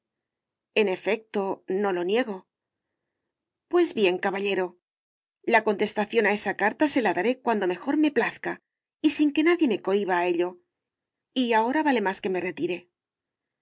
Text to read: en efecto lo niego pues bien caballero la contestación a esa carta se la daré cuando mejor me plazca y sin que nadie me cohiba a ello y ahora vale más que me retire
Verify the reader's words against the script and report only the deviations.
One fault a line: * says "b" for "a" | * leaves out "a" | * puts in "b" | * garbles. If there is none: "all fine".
* puts in "no"